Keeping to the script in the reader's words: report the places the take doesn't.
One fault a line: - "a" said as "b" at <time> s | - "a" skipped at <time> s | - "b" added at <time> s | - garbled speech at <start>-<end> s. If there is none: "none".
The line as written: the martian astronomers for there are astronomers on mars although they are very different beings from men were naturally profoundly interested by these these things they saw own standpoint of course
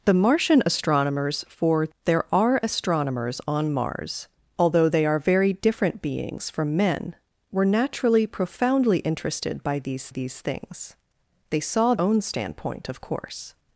none